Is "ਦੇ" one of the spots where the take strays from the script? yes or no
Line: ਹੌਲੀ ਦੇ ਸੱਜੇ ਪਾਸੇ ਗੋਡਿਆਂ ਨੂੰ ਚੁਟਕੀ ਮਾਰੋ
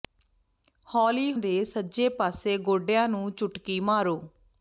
no